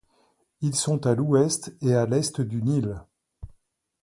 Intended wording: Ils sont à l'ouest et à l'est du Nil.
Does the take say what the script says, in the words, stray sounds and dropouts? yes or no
yes